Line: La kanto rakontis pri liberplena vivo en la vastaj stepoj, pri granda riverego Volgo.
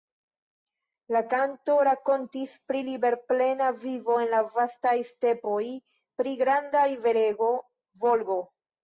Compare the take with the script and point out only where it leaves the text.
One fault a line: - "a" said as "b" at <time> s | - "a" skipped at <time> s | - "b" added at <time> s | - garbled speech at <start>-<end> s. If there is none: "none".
none